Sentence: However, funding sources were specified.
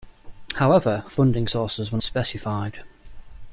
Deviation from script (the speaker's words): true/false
false